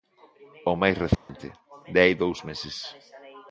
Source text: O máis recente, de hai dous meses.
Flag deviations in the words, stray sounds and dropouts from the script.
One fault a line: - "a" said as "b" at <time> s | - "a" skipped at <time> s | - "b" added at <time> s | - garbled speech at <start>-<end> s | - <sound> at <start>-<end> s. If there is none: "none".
- dropout at 1.1-1.3 s